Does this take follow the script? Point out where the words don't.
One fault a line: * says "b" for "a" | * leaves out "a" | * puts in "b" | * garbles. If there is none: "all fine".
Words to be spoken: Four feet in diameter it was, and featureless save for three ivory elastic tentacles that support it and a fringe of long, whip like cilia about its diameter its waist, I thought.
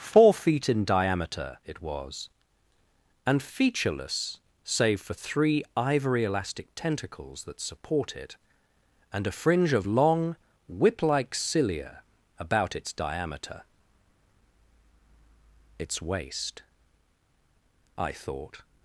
all fine